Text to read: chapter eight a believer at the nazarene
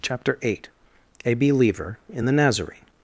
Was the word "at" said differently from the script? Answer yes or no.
yes